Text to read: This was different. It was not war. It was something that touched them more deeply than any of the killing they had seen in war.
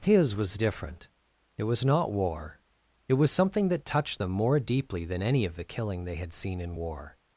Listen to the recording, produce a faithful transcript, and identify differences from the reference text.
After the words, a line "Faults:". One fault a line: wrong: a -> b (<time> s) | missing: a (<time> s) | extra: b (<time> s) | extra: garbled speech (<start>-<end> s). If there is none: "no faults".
His was different. It was not war. It was something that touched them more deeply than any of the killing they had seen in war.
Faults:
wrong: This -> His (0.0 s)